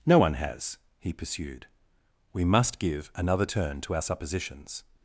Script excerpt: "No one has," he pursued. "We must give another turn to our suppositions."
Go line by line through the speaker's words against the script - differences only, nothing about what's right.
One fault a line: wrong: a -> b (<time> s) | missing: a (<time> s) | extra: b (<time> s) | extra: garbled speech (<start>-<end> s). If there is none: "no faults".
no faults